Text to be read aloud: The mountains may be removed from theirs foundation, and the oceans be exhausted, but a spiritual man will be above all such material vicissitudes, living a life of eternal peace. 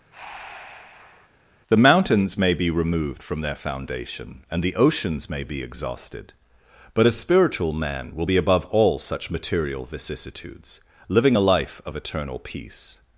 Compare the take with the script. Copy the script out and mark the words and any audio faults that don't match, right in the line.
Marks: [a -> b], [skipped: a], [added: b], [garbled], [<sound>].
[breath] The mountains may be removed from [theirs -> their] foundation, and the oceans [added: may] be exhausted, but a spiritual man will be above all such material vicissitudes, living a life of eternal peace.